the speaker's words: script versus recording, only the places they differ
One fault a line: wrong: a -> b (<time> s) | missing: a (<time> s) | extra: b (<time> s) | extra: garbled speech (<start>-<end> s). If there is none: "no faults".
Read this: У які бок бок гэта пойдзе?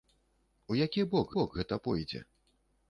no faults